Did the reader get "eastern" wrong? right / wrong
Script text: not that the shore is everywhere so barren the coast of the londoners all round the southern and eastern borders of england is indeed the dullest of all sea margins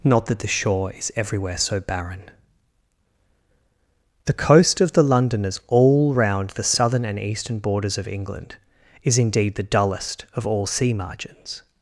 right